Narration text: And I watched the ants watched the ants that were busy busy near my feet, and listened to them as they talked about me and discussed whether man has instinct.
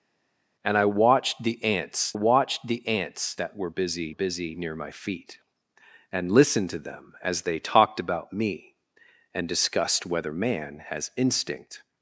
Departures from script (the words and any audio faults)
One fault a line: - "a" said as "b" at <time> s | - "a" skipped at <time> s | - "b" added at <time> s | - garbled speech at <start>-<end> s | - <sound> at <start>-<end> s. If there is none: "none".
none